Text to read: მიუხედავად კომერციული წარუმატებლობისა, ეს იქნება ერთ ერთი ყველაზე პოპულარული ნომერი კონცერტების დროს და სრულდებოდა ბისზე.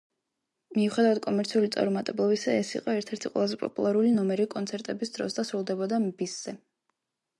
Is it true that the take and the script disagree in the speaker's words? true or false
true